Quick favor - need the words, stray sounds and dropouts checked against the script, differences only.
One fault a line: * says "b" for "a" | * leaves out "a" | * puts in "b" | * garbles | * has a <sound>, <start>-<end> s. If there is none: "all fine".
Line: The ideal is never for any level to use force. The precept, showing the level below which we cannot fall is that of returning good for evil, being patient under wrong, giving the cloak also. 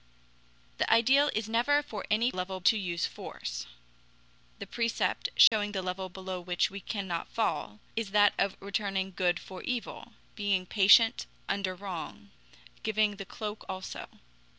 * has a dropout, 5.5-5.5 s